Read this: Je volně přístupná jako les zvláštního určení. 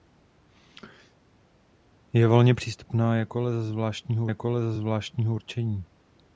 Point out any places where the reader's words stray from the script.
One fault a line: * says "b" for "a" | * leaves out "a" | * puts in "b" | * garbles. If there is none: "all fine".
* puts in "jako les zvláštního"